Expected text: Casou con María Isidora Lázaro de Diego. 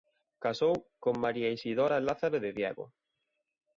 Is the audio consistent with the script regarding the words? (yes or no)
yes